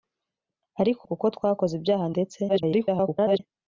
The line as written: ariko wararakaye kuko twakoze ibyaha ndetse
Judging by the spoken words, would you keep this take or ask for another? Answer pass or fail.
fail